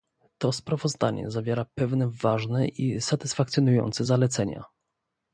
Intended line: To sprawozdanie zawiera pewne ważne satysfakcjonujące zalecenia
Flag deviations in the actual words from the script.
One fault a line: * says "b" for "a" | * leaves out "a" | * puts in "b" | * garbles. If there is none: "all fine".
* puts in "i"